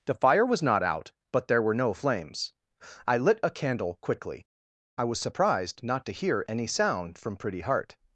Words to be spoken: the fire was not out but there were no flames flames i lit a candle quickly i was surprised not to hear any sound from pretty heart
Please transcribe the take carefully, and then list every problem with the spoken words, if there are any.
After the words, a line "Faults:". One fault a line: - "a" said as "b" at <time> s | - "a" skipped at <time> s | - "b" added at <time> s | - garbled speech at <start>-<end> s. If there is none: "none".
the fire was not out but there were no flames i lit a candle quickly i was surprised not to hear any sound from pretty heart
Faults:
- "flames" skipped at 2.5 s